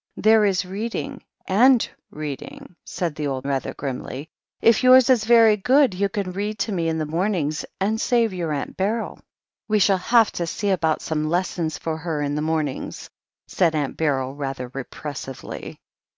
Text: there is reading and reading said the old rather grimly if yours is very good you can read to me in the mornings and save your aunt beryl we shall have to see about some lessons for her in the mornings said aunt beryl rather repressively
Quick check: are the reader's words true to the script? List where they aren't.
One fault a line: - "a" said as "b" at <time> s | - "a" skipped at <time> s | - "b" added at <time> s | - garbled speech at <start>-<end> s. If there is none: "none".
none